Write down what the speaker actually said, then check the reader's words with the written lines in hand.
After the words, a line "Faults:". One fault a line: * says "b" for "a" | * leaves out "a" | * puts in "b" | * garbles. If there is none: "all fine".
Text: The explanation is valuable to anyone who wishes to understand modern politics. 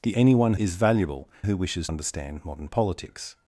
The anyone is valuable who wishes understand modern politics.
Faults:
* says "anyone" for "explanation"
* leaves out "to anyone"
* leaves out "to"